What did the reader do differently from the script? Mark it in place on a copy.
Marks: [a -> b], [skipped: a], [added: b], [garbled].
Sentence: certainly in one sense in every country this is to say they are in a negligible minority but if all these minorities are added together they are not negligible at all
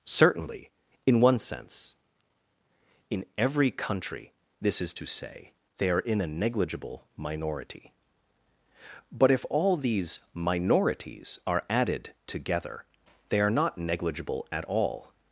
certainly in one sense in every country this is to say they are in a negligible minority but if all these minorities are added together they are not negligible at all